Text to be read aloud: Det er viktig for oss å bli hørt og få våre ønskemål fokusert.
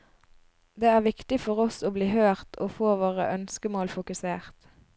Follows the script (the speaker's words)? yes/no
yes